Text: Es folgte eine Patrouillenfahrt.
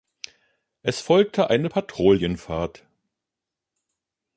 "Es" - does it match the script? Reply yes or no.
yes